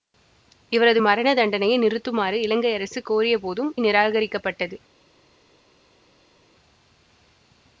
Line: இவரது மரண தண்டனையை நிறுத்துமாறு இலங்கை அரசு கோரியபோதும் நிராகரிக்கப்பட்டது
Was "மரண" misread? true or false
false